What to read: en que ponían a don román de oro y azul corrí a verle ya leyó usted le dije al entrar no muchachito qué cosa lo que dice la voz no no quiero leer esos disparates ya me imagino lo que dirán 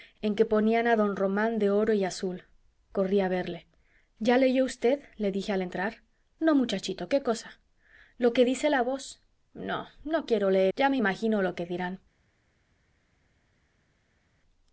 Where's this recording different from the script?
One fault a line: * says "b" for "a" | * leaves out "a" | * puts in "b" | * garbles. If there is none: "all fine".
* leaves out "esos disparates"